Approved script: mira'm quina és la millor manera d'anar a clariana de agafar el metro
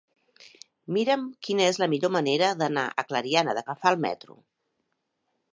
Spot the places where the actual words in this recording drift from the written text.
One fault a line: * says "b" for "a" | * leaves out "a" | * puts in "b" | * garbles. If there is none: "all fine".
all fine